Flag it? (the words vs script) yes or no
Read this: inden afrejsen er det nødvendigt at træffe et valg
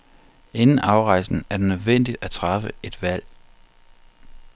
no